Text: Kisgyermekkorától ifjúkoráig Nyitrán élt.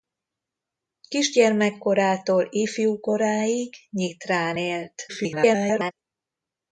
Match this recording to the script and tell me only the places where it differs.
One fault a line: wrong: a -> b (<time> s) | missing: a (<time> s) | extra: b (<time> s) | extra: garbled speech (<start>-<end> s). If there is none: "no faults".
extra: garbled speech (5.1-5.9 s)